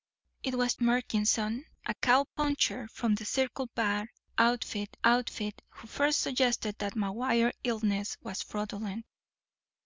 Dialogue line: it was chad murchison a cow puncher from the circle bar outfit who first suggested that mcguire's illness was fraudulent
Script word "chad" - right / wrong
wrong